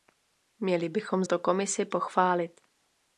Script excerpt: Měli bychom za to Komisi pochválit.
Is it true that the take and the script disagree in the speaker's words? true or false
true